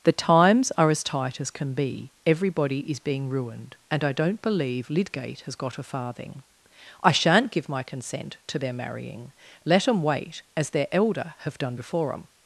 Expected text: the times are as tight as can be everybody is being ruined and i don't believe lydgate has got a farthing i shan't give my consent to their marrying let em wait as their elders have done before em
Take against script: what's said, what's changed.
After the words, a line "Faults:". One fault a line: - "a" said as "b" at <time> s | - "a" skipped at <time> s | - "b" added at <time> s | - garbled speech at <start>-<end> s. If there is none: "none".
the times are as tight as can be everybody is being ruined and i don't believe lydgate has got a farthing i shan't give my consent to their marrying let em wait as their elder have done before em
Faults:
- "elders" said as "elder" at 10.9 s